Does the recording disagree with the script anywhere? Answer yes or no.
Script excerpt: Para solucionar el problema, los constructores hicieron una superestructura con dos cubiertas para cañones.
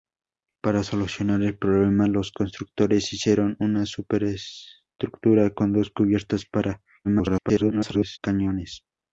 yes